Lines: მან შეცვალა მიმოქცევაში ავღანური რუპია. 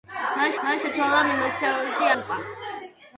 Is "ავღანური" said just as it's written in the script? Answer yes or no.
no